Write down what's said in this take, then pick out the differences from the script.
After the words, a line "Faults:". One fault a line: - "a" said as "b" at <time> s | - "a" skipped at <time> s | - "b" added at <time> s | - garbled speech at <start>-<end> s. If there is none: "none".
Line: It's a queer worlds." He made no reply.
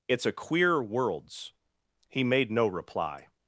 It's a queer worlds." He made no reply.
Faults:
none